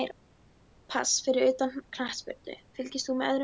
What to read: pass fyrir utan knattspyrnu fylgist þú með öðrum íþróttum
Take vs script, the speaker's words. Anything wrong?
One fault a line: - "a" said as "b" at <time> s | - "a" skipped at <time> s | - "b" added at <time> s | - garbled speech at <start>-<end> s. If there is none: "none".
none